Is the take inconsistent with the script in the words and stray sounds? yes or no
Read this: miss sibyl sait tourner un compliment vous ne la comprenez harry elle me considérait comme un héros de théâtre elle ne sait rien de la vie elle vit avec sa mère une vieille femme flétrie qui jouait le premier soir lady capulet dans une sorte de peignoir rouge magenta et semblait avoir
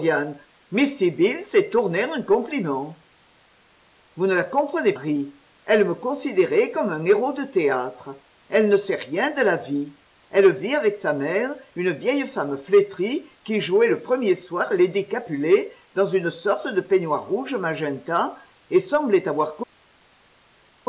no